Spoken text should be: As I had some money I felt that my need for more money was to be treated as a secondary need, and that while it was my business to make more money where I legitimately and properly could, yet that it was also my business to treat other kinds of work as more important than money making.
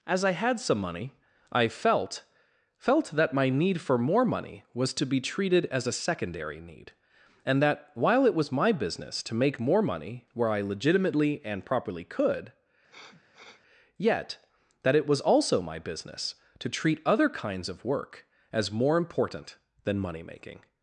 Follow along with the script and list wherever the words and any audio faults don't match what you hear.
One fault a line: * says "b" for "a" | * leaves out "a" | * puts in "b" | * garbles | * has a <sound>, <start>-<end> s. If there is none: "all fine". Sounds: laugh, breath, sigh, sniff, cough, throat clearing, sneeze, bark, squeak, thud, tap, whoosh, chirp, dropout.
* puts in "felt"
* has a sniff, 12.9-13.6 s